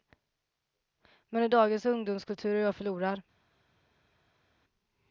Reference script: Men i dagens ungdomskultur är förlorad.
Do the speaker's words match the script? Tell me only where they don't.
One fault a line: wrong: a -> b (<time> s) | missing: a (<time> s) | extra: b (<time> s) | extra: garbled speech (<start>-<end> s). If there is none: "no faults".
extra: jag (2.6 s)